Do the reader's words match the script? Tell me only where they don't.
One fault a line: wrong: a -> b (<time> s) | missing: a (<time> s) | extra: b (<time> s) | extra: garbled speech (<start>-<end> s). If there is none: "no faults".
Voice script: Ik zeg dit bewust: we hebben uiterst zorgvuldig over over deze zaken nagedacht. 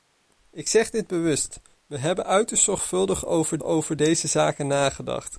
no faults